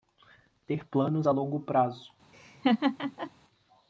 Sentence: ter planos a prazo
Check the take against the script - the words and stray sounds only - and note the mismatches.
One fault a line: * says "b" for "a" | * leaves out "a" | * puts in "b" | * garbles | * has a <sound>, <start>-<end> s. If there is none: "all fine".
* puts in "longo"
* has a laugh, 2.3-3.3 s